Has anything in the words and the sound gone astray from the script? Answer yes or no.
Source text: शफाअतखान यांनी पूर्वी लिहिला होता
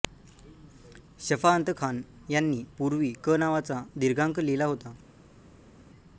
yes